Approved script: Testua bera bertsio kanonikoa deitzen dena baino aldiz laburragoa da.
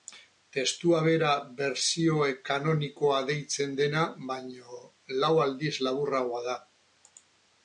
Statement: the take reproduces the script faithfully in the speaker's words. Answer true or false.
false